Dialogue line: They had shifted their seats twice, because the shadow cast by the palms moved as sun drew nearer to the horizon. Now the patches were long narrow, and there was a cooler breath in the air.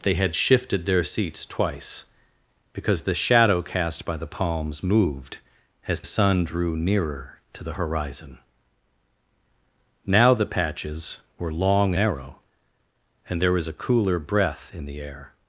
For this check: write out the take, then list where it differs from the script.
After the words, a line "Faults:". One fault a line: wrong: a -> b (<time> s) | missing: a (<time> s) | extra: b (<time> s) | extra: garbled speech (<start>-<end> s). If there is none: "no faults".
They had shifted their seats twice, because the shadow cast by the palms moved as sun drew nearer to the horizon. Now the patches were long narrow, and there was a cooler breath in the air.
Faults:
no faults